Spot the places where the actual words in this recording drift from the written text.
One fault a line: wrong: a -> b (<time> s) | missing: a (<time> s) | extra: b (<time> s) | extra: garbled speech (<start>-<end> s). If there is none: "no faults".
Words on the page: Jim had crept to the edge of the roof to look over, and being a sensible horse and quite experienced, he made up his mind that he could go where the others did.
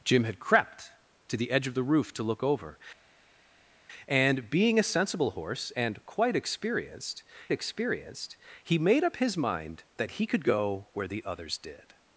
extra: experienced (7.5 s)